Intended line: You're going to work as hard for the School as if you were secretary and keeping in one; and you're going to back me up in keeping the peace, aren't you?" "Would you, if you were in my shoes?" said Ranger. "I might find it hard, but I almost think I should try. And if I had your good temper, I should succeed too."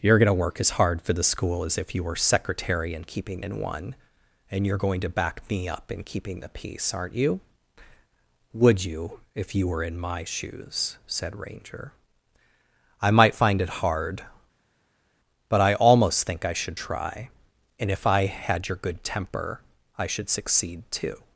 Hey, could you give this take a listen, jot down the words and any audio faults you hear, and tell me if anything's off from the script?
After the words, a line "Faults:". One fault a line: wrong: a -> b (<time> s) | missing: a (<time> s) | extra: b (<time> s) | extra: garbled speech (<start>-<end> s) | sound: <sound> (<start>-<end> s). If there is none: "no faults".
You're going to work as hard for the School as if you were secretary and keeping in one; and you're going to back me up in keeping the peace, aren't you?" "Would you, if you were in my shoes?" said Ranger. "I might find it hard, but I almost think I should try. And if I had your good temper, I should succeed too."
Faults:
no faults